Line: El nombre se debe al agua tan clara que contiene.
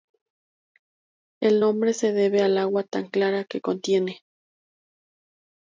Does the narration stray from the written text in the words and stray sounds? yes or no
no